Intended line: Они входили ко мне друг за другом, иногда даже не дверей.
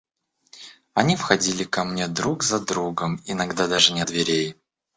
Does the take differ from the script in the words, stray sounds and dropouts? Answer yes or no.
no